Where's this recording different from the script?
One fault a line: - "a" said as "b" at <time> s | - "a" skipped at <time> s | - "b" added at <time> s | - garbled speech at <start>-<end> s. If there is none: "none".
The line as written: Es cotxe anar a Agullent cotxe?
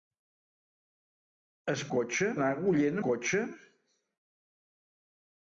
none